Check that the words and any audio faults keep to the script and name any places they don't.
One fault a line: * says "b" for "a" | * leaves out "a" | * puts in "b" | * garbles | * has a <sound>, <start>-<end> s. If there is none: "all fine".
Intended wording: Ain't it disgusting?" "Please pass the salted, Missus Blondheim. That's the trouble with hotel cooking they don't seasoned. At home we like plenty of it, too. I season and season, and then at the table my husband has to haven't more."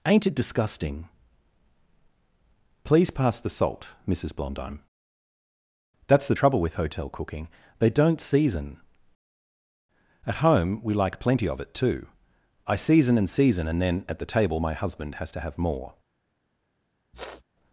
* says "salt" for "salted"
* says "season" for "seasoned"
* says "have" for "haven't"
* has a sniff, 17.1-17.4 s